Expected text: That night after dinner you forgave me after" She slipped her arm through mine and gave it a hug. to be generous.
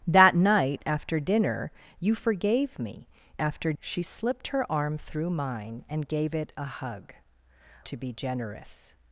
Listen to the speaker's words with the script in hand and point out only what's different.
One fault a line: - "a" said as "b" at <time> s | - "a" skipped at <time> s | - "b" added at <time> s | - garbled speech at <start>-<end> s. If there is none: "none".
none